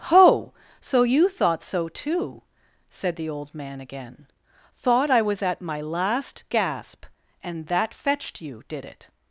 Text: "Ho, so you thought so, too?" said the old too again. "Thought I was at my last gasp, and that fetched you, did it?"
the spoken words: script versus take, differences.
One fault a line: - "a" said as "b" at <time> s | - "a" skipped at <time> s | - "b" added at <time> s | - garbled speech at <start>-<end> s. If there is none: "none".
- "too" said as "man" at 3.5 s